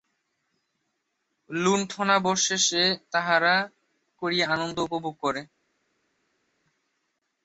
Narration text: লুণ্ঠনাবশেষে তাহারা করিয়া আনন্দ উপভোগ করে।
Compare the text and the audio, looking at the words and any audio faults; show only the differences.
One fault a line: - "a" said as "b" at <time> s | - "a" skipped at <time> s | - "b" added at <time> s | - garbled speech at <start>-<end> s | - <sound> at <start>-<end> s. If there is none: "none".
none